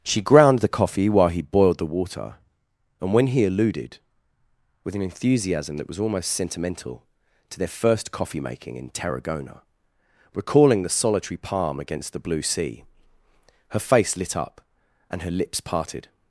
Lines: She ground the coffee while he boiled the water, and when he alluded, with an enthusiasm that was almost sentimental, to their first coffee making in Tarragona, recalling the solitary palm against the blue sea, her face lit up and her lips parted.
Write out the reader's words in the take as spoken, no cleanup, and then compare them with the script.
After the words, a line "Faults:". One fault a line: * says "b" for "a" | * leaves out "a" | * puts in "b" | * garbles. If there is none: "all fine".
She ground the coffee while he boiled the water, and when he alluded, with an enthusiasm that was almost sentimental, to their first coffee making in Tarragona, recalling the solitary palm against the blue sea, her face lit up and her lips parted.
Faults:
all fine